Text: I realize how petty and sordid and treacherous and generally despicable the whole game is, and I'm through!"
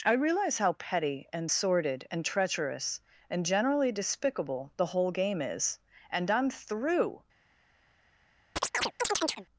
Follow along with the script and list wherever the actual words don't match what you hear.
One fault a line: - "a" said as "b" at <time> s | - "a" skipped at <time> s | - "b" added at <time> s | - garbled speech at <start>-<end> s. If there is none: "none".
none